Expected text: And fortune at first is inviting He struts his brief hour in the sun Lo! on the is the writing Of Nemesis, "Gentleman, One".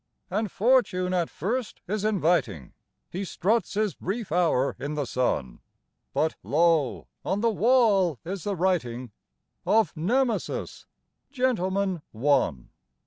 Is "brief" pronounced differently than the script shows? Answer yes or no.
no